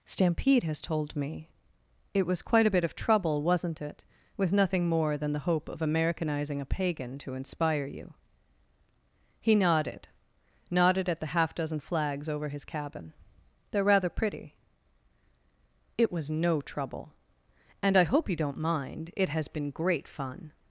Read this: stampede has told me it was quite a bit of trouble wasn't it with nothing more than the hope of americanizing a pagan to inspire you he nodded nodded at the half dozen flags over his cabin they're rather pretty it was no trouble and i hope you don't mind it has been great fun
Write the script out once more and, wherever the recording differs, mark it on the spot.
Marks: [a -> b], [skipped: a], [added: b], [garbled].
stampede has told me it was quite a bit of trouble wasn't it with nothing more than the hope of americanizing a pagan to inspire you he nodded nodded at the half dozen flags over his cabin they're rather pretty it was no trouble and i hope you don't mind it has been great fun